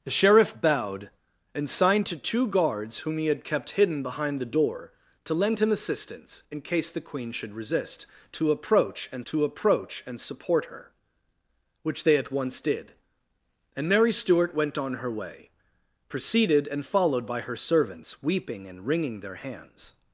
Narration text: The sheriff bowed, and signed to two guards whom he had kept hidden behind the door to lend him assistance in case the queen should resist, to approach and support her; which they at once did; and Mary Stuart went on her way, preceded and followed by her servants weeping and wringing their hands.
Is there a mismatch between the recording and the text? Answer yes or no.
yes